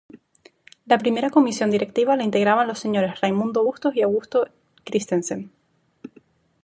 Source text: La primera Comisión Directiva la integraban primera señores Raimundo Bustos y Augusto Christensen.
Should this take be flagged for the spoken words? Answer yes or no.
yes